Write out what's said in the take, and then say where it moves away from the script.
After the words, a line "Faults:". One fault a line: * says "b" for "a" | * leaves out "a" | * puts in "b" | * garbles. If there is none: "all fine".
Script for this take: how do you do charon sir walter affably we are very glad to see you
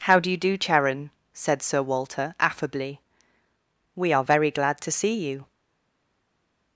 how do you do charon said sir walter affably we are very glad to see you
Faults:
* puts in "said"